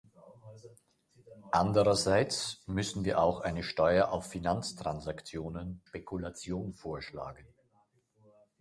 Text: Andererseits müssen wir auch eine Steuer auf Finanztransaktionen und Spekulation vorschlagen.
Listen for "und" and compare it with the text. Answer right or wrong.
wrong